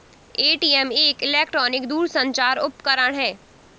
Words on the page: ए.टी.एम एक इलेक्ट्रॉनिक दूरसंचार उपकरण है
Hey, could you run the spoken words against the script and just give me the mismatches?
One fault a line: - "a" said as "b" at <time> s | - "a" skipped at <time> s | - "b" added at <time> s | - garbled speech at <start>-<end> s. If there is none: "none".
none